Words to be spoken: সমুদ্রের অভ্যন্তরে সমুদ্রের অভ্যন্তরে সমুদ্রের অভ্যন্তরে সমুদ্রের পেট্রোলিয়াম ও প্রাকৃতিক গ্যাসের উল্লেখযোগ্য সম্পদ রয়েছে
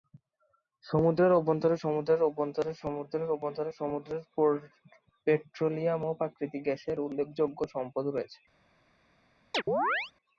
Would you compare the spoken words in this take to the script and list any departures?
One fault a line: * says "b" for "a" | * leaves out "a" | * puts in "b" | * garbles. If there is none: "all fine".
all fine